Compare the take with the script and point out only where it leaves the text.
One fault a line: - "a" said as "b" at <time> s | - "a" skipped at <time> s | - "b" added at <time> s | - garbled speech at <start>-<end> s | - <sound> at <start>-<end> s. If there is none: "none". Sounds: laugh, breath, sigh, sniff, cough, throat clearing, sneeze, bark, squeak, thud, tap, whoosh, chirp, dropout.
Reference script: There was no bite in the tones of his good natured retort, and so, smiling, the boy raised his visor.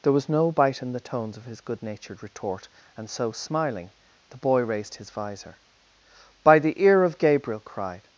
- "By the ear of Gabriel cried" added at 6.4 s